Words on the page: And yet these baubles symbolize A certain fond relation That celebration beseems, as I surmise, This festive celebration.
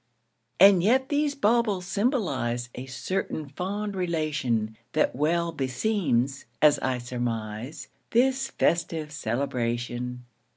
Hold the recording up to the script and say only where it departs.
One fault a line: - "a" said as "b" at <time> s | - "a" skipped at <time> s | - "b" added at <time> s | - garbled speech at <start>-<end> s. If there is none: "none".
- "celebration" said as "well" at 5.2 s